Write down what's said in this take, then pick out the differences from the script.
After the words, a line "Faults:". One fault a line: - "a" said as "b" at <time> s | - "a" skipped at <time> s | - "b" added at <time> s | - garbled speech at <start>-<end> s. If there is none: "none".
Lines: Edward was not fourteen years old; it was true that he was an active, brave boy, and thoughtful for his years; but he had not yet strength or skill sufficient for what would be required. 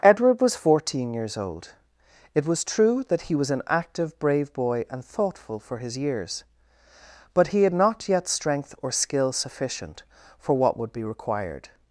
Edward was fourteen years old; it was true that he was an active, brave boy, and thoughtful for his years; but he had not yet strength or skill sufficient for what would be required.
Faults:
- "not" skipped at 0.6 s